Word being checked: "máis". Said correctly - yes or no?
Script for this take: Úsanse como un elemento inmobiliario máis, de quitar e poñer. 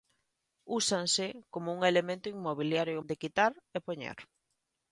no